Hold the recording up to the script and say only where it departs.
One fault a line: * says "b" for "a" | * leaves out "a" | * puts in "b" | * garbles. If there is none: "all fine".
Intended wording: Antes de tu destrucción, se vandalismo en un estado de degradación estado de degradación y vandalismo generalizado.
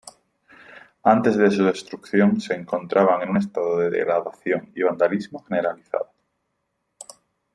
* says "su" for "tu"
* says "encontraban" for "vandalismo"
* leaves out "estado de degradación"